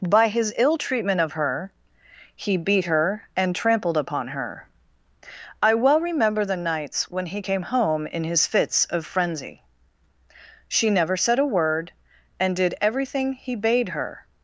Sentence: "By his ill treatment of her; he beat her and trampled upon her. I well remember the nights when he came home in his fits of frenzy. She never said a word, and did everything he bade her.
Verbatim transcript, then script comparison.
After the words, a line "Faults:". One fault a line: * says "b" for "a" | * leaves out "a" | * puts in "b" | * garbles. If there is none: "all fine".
"By his ill treatment of her; he beat her and trampled upon her. I well remember the nights when he came home in his fits of frenzy. She never said a word, and did everything he bade her.
Faults:
all fine